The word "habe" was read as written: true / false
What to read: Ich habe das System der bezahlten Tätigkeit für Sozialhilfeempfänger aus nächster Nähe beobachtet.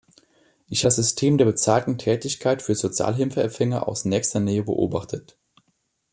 false